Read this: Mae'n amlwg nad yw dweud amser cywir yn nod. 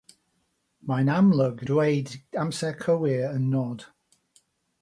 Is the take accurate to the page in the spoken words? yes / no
no